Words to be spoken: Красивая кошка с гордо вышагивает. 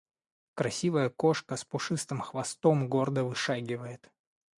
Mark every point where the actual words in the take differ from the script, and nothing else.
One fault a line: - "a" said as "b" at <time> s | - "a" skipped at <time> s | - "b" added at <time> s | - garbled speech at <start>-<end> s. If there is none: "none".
- "пушистым хвостом" added at 1.6 s